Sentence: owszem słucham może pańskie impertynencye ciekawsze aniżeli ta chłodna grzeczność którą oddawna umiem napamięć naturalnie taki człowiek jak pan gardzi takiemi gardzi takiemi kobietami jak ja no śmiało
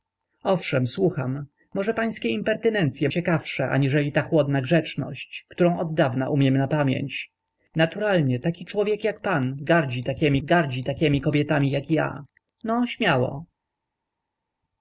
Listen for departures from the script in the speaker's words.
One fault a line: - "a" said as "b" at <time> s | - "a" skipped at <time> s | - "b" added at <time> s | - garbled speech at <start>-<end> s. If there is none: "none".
none